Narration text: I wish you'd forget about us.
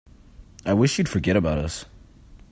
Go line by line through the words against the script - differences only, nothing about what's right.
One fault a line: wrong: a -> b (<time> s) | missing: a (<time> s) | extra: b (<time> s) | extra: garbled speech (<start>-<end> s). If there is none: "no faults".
no faults